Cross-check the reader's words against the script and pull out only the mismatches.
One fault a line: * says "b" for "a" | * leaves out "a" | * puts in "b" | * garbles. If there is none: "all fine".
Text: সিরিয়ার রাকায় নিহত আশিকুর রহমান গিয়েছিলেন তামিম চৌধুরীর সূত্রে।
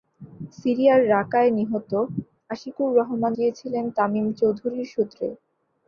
all fine